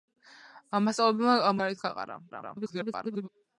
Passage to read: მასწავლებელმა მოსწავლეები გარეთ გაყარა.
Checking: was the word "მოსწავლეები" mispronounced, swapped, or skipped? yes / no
yes